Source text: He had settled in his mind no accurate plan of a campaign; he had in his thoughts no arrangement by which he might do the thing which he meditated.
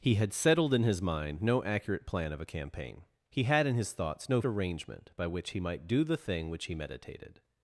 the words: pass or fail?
pass